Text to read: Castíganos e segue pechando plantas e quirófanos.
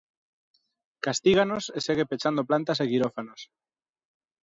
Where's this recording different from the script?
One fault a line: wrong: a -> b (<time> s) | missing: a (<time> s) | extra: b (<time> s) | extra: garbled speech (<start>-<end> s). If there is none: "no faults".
no faults